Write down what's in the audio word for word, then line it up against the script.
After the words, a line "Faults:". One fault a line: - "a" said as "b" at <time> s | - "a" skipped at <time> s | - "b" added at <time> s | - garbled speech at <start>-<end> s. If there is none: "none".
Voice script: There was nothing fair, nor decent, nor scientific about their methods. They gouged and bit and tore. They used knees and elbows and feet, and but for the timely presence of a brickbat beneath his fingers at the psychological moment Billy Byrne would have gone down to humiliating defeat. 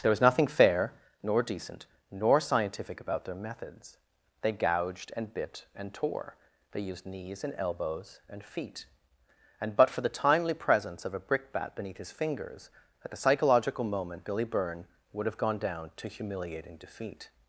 There was nothing fair, nor decent, nor scientific about their methods. They gouged and bit and tore. They used knees and elbows and feet, and but for the timely presence of a brickbat beneath his fingers at the psychological moment Billy Byrne would have gone down to humiliating defeat.
Faults:
none